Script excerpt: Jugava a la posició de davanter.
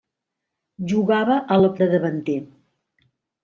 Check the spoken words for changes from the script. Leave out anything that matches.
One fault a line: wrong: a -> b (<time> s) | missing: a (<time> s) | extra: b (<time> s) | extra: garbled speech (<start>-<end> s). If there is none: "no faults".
missing: posició (1.7 s)